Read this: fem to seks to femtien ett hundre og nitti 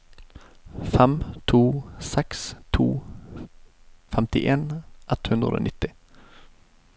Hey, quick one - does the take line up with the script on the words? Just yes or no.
yes